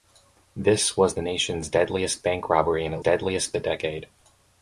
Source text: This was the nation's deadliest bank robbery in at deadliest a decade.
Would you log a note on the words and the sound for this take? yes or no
no